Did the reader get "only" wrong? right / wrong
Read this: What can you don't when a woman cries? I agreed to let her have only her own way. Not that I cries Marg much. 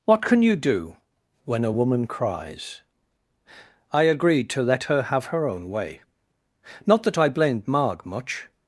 wrong